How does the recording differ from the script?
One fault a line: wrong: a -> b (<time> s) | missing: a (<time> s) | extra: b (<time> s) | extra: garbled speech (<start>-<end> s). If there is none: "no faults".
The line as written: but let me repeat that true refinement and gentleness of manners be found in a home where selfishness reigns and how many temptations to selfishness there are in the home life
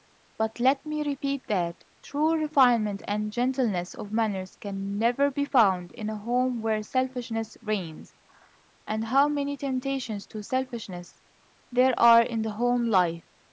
extra: can never (4.5 s)